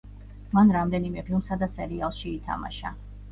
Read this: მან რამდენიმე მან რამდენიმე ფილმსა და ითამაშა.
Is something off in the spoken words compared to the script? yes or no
yes